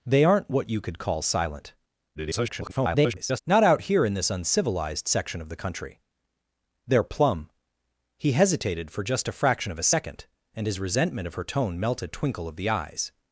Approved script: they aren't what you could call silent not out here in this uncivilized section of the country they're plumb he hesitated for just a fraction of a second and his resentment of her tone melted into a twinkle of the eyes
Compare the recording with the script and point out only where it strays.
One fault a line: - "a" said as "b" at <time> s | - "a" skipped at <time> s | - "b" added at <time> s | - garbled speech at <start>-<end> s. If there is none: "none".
- garbled speech at 2.1-3.4 s
- "into" skipped at 12.1 s